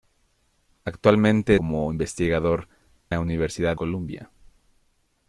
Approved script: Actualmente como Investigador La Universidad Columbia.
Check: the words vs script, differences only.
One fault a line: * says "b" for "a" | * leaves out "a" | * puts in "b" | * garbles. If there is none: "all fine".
all fine